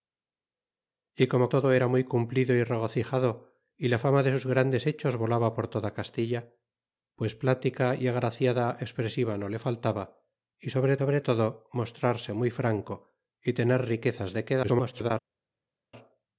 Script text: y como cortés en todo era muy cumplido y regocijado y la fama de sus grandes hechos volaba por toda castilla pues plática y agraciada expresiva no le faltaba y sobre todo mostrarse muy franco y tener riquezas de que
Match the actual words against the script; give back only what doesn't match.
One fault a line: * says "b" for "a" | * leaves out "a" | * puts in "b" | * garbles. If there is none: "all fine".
* leaves out "cortés en"
* puts in "sobre"
* garbles